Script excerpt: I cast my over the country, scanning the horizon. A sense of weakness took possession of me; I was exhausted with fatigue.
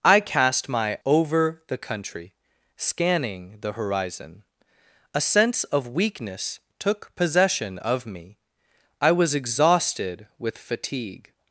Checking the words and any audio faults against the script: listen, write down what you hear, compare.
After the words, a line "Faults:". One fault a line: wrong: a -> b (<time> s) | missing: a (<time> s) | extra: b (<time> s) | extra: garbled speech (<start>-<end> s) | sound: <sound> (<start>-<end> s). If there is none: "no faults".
I cast my over the country, scanning the horizon. A sense of weakness took possession of me; I was exhausted with fatigue.
Faults:
no faults